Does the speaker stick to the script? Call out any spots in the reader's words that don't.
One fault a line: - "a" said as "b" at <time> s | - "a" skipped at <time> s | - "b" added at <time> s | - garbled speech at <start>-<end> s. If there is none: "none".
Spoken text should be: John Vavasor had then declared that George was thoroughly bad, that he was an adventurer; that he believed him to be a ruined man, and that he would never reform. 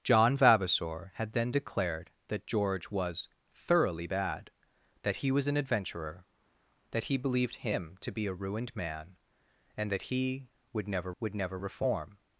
- "would never" added at 11.2 s